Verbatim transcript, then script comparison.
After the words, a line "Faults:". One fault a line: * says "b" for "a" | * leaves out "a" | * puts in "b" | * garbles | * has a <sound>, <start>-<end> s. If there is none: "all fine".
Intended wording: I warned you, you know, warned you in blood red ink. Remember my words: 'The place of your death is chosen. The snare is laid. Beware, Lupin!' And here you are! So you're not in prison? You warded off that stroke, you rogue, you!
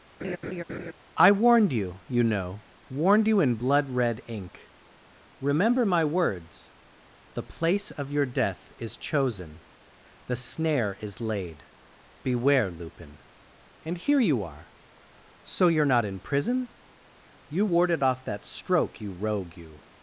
I warned you, you know, warned you in blood red ink. Remember my words: 'The place of your death is chosen. The snare is laid. Beware, Lupin!' And here you are! So you're not in prison? You warded off that stroke, you rogue, you!
Faults:
* has a laugh, 0.2-0.9 s